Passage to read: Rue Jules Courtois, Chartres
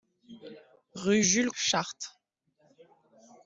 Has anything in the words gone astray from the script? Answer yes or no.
yes